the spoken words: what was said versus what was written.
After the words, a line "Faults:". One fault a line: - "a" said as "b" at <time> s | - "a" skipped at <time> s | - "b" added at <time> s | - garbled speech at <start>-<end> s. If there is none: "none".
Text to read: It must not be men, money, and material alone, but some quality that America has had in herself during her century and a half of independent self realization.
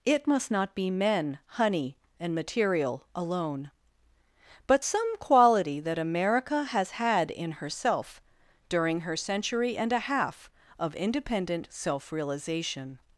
It must not be men, honey, and material alone, but some quality that America has had in herself during her century and a half of independent self realization.
Faults:
- "money" said as "honey" at 1.4 s